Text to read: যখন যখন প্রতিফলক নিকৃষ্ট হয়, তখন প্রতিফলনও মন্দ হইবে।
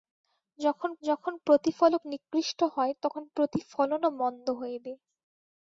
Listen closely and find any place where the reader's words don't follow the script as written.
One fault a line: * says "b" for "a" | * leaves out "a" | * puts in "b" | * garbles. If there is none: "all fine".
all fine